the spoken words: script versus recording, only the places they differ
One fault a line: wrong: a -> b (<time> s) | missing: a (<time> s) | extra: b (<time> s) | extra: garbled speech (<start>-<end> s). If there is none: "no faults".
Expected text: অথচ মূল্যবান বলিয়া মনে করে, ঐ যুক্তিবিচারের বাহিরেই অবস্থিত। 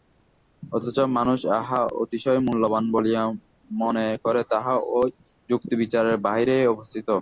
extra: মানুষ যাহা অতিশয় (1.2 s)
extra: তাহা (4.5 s)